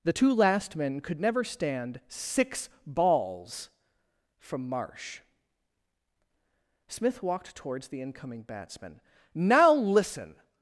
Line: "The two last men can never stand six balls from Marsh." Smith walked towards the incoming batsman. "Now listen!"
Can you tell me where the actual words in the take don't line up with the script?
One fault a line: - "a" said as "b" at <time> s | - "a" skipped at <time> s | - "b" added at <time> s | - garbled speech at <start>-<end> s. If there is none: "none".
- "can" said as "could" at 1.0 s